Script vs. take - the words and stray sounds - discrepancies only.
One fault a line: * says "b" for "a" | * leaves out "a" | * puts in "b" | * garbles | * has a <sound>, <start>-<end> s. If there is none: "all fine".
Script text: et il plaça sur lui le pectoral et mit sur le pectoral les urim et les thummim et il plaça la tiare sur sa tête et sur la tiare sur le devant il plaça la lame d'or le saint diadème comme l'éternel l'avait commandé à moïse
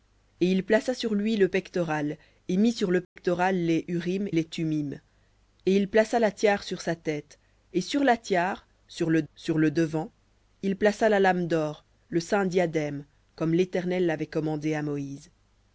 * has a dropout, 3.0-3.2 s
* leaves out "et"
* puts in "sur le"